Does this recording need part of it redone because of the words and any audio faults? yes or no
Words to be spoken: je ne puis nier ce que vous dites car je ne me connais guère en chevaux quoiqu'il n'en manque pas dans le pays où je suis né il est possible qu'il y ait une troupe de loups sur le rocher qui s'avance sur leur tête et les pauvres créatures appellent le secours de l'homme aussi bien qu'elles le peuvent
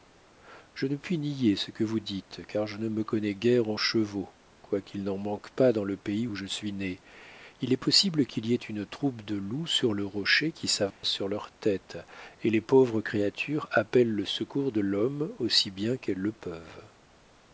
yes